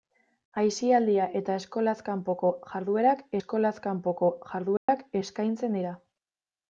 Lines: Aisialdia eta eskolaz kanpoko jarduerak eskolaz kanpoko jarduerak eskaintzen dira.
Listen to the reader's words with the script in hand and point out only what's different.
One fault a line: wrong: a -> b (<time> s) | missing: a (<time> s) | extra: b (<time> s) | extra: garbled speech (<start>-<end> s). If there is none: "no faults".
no faults